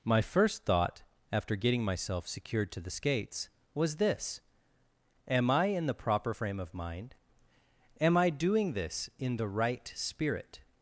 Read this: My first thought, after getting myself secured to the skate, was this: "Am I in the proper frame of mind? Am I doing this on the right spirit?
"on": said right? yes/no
no